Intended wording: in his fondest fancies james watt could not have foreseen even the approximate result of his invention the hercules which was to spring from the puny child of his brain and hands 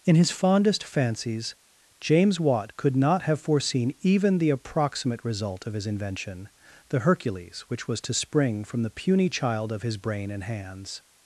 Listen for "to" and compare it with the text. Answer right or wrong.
right